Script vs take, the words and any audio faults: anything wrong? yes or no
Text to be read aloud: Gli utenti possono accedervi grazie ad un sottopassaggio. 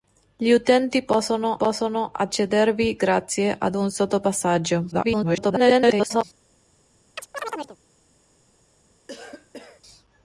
yes